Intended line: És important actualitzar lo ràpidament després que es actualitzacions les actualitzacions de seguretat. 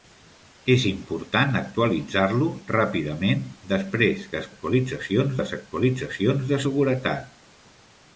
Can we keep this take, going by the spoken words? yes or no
yes